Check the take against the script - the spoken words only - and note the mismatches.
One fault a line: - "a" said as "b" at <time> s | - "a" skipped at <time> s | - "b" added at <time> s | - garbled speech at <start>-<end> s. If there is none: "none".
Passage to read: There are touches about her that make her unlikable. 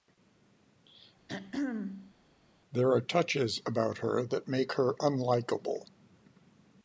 none